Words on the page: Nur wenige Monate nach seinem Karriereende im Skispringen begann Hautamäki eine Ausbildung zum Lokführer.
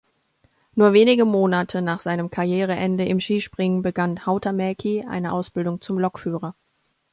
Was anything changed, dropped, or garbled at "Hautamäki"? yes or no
no